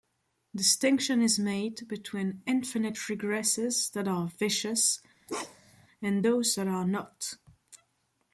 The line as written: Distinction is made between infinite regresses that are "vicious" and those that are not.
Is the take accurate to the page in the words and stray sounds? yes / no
no